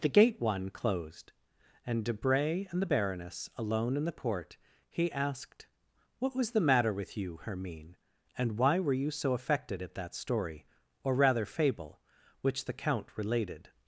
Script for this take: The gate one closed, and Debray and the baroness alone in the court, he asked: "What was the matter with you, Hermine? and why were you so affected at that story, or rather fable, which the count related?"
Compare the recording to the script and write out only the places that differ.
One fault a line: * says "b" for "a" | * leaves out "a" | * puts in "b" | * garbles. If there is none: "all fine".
all fine